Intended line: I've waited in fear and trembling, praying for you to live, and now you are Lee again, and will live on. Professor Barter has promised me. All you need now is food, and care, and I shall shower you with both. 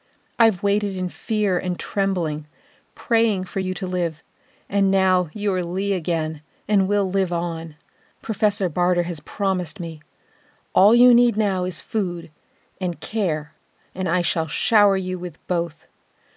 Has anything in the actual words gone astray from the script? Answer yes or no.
no